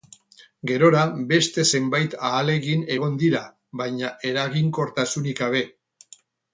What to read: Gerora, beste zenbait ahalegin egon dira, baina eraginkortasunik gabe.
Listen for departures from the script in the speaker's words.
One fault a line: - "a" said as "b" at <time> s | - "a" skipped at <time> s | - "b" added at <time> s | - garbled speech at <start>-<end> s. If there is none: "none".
none